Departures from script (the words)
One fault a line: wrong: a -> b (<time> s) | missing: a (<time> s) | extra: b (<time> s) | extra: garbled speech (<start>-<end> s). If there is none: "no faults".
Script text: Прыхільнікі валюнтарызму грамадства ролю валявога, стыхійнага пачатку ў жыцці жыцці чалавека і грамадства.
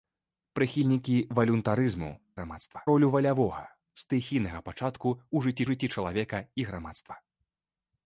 no faults